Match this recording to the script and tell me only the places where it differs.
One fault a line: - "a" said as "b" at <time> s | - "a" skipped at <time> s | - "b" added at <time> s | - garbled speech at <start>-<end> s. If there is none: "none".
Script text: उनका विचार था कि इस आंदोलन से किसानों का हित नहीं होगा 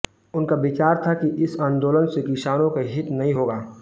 none